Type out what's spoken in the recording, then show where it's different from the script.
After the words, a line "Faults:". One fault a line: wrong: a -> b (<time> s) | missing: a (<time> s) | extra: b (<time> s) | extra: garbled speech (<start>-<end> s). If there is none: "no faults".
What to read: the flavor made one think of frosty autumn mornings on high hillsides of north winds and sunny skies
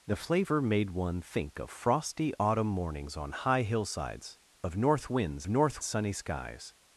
the flavor made one think of frosty autumn mornings on high hillsides of north winds north sunny skies
Faults:
wrong: and -> north (5.5 s)